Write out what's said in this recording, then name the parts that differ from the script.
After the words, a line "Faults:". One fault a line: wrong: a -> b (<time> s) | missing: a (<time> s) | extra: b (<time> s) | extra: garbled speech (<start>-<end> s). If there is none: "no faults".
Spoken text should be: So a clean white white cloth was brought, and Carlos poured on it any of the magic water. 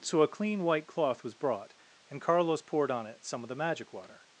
So a clean white cloth was brought, and Carlos poured on it some of the magic water.
Faults:
missing: white (0.9 s)
wrong: any -> some (3.2 s)